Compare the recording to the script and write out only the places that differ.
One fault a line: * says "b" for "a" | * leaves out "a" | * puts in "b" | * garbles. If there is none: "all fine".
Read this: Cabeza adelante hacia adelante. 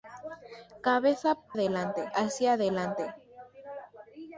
all fine